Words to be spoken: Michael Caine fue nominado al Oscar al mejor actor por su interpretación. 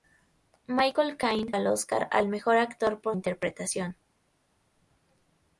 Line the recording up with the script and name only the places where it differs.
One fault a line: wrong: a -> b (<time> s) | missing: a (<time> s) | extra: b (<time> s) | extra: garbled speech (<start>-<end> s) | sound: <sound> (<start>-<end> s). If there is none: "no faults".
missing: fue nominado (1.5 s)
missing: su (3.2 s)